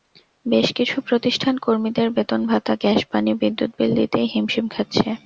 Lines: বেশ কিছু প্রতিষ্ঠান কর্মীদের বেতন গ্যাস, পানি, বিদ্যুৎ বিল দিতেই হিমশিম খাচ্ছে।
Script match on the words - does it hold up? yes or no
no